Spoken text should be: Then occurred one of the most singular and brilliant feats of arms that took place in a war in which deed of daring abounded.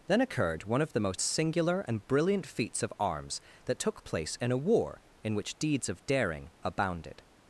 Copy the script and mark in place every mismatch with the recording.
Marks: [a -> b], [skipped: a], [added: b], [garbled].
Then occurred one of the most singular and brilliant feats of arms that took place in a war in which [deed -> deeds] of daring abounded.